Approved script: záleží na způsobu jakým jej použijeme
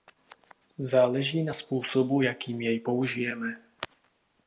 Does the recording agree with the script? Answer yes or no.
yes